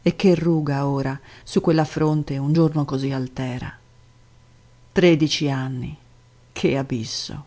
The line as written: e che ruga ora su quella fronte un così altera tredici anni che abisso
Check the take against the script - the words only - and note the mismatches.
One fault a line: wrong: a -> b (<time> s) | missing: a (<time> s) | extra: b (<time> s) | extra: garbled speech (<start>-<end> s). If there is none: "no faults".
extra: giorno (2.5 s)